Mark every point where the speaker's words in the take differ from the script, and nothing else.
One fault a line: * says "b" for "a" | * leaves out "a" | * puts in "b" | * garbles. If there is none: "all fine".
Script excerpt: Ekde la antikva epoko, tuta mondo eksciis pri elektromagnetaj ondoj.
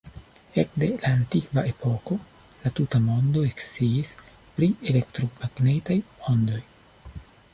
* puts in "la"